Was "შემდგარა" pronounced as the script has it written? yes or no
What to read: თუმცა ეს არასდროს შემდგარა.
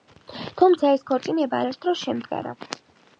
yes